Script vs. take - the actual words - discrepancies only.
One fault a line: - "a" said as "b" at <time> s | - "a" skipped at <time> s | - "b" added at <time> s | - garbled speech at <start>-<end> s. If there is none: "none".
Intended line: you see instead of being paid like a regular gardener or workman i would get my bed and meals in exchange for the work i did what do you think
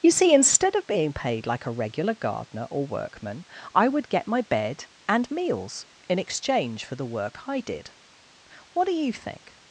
none